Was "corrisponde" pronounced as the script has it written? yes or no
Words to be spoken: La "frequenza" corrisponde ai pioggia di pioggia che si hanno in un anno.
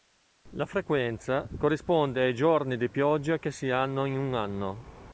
yes